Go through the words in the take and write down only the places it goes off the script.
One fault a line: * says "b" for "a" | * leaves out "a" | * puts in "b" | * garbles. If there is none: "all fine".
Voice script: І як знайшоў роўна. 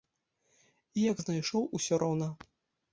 * puts in "усё"